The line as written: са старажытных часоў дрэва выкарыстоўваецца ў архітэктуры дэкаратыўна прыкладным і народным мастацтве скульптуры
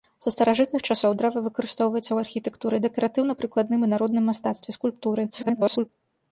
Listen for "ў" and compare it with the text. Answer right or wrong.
right